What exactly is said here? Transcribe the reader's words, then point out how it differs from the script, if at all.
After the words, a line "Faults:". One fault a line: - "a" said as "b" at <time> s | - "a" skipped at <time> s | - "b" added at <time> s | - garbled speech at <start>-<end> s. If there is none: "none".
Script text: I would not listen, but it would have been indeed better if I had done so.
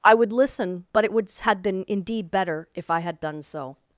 I would listen, but it would had been indeed better if I had done so.
Faults:
- "not" skipped at 0.3 s
- "have" said as "had" at 1.4 s